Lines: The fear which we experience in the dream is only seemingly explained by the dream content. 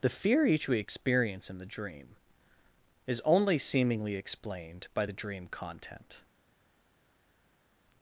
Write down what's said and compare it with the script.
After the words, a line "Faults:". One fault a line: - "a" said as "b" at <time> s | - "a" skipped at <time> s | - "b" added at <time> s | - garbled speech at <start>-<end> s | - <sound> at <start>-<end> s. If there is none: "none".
The fear each we experience in the dream is only seemingly explained by the dream content.
Faults:
- "which" said as "each" at 0.5 s